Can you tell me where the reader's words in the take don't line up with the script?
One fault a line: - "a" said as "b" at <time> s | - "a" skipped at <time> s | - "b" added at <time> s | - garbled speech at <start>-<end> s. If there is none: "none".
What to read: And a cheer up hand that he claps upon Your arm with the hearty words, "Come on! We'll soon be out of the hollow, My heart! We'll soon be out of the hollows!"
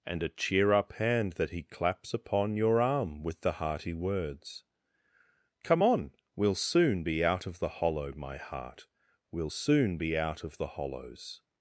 none